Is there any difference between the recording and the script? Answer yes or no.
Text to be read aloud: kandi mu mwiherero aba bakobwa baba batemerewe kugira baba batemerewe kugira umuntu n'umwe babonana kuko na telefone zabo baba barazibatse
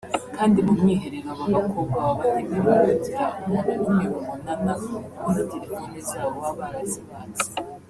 yes